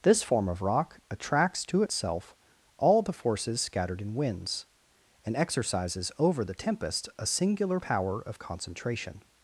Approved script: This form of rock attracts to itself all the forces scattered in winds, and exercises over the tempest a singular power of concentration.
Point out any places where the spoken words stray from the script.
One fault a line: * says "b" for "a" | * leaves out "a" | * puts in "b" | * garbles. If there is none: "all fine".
all fine